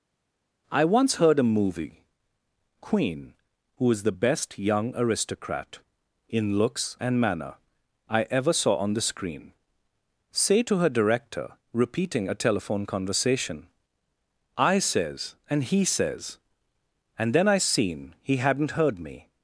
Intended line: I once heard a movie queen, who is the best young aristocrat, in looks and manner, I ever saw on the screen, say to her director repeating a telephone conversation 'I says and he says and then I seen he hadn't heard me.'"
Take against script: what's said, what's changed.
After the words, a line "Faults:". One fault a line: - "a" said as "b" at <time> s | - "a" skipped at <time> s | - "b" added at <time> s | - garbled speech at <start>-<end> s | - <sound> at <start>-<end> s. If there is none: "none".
I once heard a movie queen, who is the best young aristocrat, in looks and manner, I ever saw on the screen, say to her director repeating a telephone conversation 'I says and he says and then I seen he hadn't heard me.'"
Faults:
none